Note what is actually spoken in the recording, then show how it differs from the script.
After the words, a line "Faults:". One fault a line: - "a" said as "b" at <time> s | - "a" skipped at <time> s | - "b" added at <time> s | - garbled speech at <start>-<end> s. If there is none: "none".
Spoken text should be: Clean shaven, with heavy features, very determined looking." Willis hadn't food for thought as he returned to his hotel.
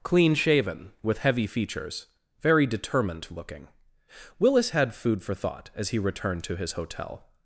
Clean shaven, with heavy features, very determined looking." Willis had food for thought as he returned to his hotel.
Faults:
- "hadn't" said as "had" at 4.7 s